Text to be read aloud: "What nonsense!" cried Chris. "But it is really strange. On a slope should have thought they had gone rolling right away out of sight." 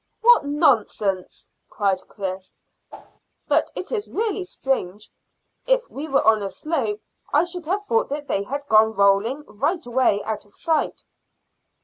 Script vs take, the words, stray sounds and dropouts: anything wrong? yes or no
yes